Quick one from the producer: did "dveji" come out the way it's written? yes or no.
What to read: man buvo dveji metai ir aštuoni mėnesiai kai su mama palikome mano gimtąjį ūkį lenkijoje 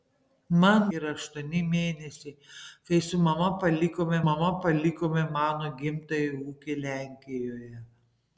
no